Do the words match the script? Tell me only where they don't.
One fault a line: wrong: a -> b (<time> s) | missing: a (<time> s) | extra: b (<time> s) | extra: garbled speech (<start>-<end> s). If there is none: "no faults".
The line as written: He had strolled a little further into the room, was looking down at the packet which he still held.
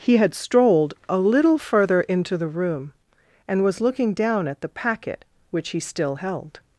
extra: and (3.5 s)